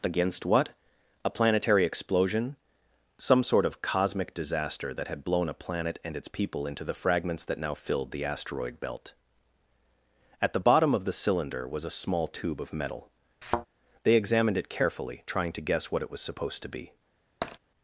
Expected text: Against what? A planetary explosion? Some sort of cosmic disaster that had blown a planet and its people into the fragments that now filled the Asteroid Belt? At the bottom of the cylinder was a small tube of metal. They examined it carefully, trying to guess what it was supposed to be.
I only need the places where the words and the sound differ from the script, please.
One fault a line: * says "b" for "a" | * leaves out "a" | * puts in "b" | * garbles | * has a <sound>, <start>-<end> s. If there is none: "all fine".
* has a thud, 13.4-13.7 s
* has a tap, 17.4-17.6 s